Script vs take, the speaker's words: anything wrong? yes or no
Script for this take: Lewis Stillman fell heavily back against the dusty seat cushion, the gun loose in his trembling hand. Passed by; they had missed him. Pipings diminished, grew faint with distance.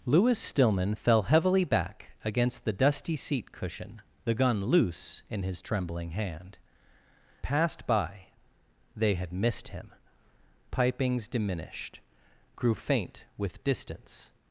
no